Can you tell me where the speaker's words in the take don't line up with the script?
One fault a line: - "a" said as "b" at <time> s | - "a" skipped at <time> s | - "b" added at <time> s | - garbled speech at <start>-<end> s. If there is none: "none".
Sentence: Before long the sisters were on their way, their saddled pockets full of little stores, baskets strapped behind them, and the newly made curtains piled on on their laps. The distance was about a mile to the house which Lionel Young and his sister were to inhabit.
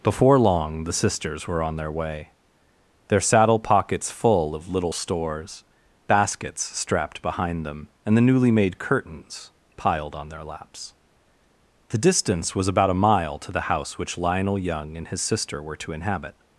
- "saddled" said as "saddle" at 3.2 s
- "on" skipped at 10.3 s